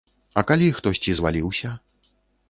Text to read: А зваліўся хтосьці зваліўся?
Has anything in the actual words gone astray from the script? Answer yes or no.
yes